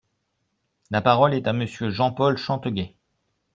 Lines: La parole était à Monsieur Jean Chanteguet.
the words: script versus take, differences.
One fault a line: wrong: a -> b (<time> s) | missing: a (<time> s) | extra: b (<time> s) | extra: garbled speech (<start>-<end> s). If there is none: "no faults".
wrong: était -> est (1.3 s)
extra: Paul (2.1 s)